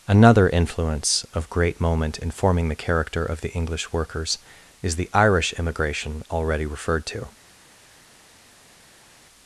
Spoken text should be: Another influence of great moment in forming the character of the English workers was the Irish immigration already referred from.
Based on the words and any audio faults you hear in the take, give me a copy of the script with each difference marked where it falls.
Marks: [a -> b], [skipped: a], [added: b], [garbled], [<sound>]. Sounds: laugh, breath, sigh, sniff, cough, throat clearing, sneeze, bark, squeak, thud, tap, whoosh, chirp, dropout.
Another influence of great moment in forming the character of the English workers [was -> is] the Irish immigration already referred [from. -> to]